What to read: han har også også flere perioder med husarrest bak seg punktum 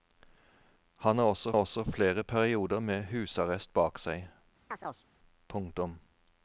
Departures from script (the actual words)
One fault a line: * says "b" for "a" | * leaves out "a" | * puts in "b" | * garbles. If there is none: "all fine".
all fine